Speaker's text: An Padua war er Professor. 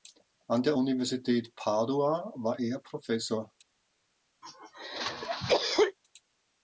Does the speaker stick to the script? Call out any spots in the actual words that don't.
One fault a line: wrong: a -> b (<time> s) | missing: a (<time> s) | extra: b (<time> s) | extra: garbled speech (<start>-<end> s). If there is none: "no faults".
extra: der Universität (0.6 s)